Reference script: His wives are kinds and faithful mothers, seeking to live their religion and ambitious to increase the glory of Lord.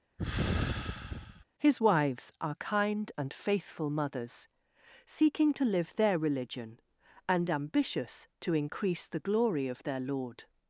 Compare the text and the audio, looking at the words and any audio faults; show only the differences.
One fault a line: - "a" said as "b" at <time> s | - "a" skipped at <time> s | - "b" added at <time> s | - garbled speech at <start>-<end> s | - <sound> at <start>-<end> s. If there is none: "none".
- sigh at 0.2-1.4 s
- "kinds" said as "kind" at 2.6 s
- "their" added at 9.8 s